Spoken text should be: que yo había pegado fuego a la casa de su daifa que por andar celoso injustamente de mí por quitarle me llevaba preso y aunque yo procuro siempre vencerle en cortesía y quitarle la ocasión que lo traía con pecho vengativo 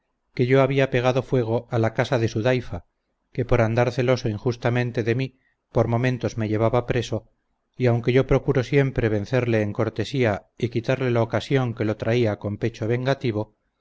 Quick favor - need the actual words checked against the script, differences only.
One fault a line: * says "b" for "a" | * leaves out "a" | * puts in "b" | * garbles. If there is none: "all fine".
* says "momentos" for "quitarle"